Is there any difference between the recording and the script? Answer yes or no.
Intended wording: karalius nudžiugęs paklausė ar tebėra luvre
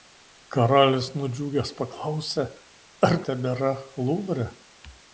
no